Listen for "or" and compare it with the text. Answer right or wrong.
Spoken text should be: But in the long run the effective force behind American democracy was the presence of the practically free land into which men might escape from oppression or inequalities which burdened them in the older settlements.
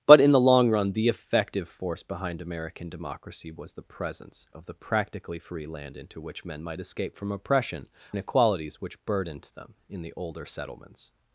wrong